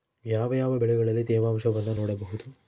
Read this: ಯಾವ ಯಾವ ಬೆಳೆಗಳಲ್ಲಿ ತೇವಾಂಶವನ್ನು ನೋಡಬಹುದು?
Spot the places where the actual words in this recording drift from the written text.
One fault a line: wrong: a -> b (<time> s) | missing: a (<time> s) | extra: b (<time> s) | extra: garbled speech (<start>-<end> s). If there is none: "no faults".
no faults